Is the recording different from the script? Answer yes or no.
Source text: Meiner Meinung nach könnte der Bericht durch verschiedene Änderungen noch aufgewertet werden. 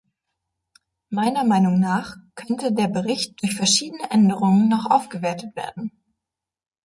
no